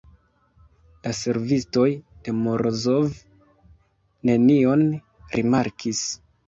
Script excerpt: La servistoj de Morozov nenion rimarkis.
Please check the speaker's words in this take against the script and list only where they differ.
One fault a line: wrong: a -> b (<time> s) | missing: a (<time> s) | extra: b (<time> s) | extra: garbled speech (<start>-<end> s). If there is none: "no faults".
no faults